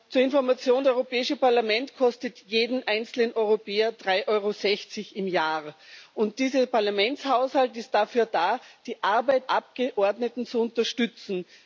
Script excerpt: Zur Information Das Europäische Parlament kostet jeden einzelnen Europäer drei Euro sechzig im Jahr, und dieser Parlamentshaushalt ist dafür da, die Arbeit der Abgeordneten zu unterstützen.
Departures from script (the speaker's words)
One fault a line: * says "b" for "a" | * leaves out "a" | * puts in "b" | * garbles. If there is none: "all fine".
* leaves out "Das"
* leaves out "der"